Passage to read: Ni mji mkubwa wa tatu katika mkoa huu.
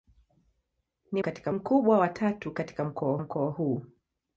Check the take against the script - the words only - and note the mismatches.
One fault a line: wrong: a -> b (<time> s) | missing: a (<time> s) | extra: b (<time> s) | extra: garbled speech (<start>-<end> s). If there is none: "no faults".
wrong: mji -> katika (1.2 s)
extra: mkoa (3.2 s)